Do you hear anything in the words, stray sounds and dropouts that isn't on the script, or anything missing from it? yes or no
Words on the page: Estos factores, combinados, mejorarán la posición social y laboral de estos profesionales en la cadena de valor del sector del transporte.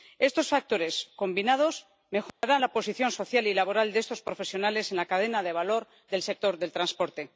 yes